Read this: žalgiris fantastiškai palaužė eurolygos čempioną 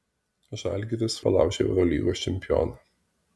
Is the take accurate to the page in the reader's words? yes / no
no